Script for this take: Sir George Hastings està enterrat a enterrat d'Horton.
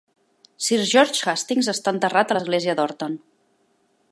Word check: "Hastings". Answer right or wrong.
right